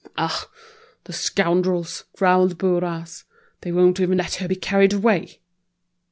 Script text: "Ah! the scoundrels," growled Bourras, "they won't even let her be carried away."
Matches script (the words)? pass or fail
pass